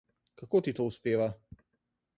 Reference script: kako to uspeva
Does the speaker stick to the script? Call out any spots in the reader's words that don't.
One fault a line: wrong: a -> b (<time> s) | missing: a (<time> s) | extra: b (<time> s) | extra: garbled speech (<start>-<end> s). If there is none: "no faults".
extra: ti (0.6 s)